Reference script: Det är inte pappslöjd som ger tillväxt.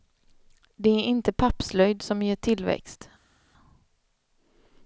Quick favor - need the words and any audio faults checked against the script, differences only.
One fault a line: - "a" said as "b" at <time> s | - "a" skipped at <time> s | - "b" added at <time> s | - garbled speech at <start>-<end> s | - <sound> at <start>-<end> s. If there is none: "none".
none